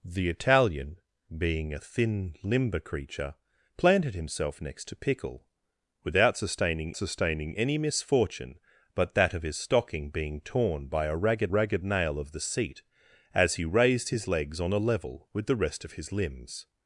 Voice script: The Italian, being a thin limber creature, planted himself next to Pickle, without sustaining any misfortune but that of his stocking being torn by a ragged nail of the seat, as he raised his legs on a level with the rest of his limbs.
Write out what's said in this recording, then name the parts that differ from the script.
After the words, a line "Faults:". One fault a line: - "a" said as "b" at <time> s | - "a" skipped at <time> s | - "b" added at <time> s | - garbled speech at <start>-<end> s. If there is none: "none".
The Italian, being a thin limber creature, planted himself next to Pickle, without sustaining sustaining any misfortune but that of his stocking being torn by a ragged ragged nail of the seat, as he raised his legs on a level with the rest of his limbs.
Faults:
- "sustaining" added at 7.0 s
- "ragged" added at 11.5 s